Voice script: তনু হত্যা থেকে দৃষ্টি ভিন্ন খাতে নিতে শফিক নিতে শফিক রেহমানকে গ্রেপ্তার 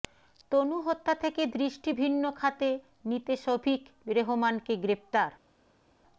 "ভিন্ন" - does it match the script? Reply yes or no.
yes